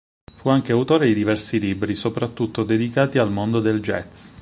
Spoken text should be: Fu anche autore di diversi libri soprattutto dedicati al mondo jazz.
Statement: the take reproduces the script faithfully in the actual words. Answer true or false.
false